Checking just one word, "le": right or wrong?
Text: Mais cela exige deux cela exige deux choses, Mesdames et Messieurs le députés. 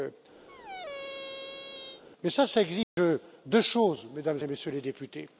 wrong